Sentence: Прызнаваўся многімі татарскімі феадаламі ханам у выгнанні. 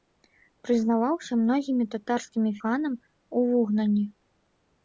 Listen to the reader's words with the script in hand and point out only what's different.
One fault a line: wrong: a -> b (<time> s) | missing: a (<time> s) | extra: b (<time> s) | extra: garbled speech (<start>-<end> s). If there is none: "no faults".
missing: феадаламі (2.5 s)